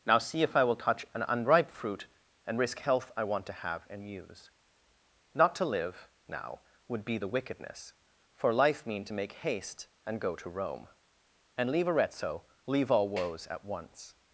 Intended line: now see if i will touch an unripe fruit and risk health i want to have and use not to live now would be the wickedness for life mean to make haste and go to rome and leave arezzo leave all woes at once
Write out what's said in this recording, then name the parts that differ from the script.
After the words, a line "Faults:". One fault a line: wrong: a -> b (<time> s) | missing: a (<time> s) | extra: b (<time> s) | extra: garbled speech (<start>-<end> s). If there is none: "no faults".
now see if i will touch an unripe fruit and risk health i want to have and use not to live now would be the wickedness for life mean to make haste and go to rome and leave arezzo leave all woes at once
Faults:
no faults